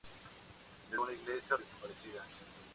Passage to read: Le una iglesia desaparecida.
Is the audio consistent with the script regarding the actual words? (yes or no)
yes